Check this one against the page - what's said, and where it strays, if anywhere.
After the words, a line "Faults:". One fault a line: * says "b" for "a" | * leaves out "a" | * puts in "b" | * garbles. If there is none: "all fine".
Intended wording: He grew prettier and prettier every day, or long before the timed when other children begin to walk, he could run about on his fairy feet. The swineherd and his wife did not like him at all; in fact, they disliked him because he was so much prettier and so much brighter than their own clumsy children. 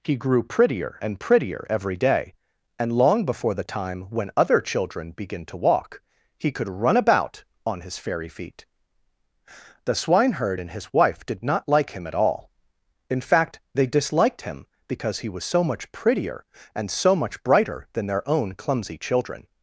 He grew prettier and prettier every day, and long before the time when other children begin to walk, he could run about on his fairy feet. The swineherd and his wife did not like him at all; in fact, they disliked him because he was so much prettier and so much brighter than their own clumsy children.
Faults:
* says "and" for "or"
* says "time" for "timed"